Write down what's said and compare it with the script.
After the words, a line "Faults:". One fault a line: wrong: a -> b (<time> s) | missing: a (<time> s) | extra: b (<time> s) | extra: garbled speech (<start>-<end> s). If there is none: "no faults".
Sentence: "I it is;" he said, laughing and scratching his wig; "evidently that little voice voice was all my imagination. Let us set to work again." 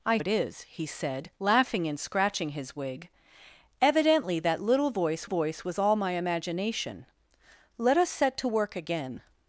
"I it is;" he said, laughing and scratching his wig; "evidently that little voice voice was all my imagination. Let us set to work again."
Faults:
no faults